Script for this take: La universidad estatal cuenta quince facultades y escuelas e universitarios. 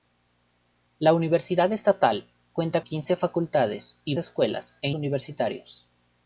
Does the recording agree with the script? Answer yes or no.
yes